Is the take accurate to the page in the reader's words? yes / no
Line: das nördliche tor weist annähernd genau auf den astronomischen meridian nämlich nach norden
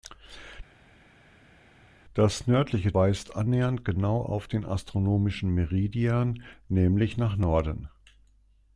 no